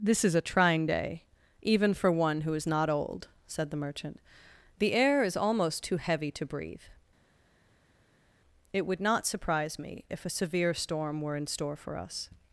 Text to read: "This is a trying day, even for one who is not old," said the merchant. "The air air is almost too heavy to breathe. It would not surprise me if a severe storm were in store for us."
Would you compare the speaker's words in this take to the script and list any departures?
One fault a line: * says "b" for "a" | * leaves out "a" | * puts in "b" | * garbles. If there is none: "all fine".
* leaves out "air"